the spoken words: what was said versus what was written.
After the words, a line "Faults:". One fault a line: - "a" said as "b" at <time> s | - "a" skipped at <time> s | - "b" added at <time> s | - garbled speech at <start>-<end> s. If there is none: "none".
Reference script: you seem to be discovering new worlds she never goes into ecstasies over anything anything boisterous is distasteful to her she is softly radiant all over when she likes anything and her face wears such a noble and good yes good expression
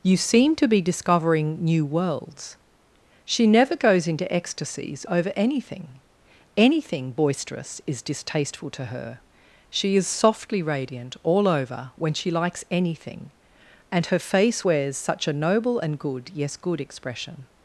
you seem to be discovering new worlds she never goes into ecstasies over anything anything boisterous is distasteful to her she is softly radiant all over when she likes anything and her face wears such a noble and good yes good expression
Faults:
none